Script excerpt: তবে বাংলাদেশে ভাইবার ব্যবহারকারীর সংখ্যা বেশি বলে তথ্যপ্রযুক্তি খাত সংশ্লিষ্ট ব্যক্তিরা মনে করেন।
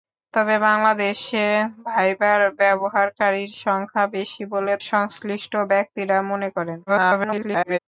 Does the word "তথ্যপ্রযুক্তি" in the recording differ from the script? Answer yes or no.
yes